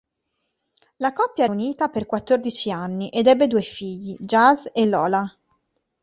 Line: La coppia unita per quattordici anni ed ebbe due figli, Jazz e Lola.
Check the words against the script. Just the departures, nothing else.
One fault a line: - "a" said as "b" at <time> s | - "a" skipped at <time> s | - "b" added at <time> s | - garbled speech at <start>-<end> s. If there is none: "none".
none